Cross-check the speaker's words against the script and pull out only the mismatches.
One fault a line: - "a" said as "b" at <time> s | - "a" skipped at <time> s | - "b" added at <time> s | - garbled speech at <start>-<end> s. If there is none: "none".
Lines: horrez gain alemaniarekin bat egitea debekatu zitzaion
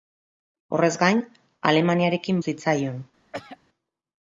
- "bat egitea debekatu" skipped at 2.4 s